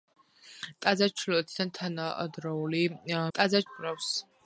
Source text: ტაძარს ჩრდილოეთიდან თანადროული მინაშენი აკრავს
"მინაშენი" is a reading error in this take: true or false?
true